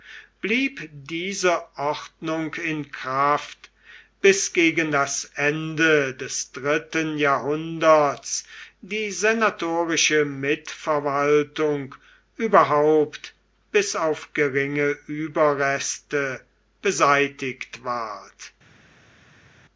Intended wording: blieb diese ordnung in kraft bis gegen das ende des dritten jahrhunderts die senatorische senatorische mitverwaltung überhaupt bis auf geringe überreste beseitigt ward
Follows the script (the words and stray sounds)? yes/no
no